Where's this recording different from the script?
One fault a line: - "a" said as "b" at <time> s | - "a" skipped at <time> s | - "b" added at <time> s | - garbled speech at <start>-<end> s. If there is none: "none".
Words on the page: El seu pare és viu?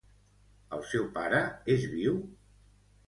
none